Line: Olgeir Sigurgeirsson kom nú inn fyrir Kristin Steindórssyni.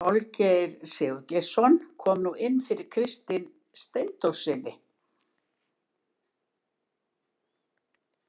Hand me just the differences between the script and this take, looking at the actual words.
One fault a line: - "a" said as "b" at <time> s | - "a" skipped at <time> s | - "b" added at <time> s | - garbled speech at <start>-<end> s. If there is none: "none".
none